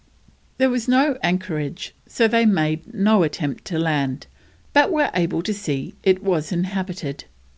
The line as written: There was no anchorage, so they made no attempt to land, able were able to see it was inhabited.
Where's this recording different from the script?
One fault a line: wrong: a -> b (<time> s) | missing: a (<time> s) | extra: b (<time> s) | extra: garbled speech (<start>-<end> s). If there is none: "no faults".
wrong: able -> but (4.7 s)